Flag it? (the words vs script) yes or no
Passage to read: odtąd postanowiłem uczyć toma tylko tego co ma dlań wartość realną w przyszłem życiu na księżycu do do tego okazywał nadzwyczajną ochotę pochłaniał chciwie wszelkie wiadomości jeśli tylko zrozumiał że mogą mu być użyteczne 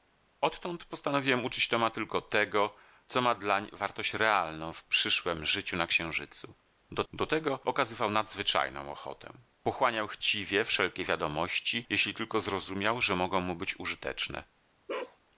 no